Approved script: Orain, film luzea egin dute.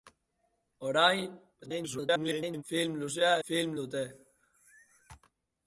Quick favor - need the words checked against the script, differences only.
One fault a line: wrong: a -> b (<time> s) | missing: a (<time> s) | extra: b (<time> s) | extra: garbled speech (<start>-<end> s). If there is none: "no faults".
extra: garbled speech (1.6-2.6 s)
wrong: egin -> film (3.5 s)